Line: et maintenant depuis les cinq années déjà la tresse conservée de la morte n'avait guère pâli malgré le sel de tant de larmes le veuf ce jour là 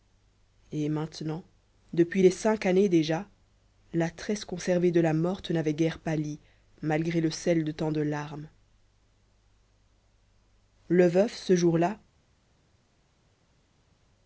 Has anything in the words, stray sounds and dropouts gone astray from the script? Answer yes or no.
no